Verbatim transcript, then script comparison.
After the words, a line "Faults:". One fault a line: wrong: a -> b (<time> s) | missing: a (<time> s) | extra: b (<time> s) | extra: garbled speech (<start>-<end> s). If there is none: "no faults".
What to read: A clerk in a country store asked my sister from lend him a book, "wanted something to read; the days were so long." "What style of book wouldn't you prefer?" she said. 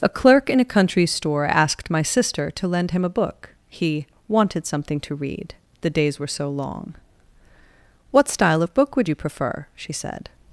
A clerk in a country store asked my sister to lend him a book, he "wanted something to read; the days were so long." "What style of book would you prefer?" she said.
Faults:
wrong: from -> to (2.5 s)
extra: he (3.7 s)
wrong: wouldn't -> would (9.0 s)